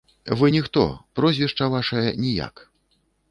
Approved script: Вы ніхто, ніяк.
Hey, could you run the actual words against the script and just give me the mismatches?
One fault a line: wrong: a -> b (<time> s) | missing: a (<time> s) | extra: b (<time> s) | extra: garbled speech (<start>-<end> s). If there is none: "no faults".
extra: прозвішча вашае (1.2 s)